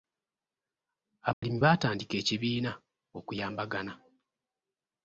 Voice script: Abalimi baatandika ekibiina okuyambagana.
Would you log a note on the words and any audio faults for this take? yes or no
yes